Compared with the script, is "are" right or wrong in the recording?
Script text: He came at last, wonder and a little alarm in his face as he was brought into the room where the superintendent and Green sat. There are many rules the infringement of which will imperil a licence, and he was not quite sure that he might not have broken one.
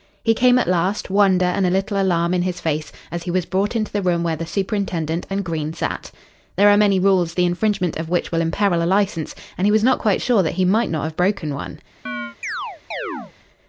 right